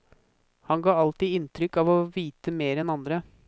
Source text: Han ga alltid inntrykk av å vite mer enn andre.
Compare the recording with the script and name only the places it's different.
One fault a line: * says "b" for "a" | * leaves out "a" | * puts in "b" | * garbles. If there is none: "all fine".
all fine